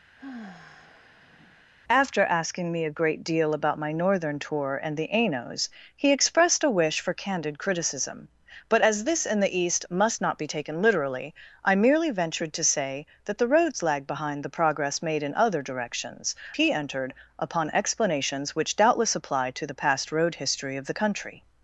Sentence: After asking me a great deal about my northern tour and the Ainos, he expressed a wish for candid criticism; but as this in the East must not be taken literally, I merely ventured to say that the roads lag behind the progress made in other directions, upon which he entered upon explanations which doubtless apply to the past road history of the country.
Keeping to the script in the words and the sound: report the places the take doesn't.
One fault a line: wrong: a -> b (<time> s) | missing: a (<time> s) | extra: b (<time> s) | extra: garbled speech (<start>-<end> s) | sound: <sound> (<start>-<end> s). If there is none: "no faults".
sound: sigh (0.2-1.7 s)
missing: upon which (16.3 s)